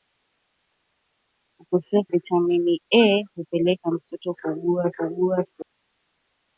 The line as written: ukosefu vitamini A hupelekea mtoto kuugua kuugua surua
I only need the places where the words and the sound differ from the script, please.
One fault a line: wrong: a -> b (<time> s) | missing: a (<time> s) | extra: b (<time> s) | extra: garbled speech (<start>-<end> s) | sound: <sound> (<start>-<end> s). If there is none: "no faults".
no faults